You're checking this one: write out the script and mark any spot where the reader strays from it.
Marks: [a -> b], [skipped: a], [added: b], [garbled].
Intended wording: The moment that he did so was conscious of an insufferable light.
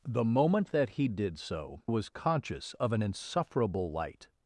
The moment that he did so was conscious of an insufferable light.